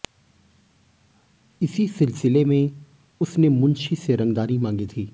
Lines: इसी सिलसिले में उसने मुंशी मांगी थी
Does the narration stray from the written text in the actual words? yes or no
yes